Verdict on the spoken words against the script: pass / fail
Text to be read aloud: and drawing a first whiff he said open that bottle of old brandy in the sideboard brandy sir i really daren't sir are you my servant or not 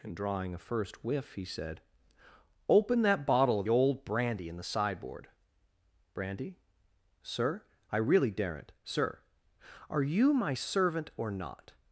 pass